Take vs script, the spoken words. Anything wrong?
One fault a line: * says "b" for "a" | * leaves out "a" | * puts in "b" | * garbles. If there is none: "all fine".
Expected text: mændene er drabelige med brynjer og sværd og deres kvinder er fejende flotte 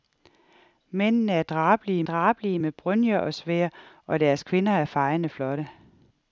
* puts in "drabelige"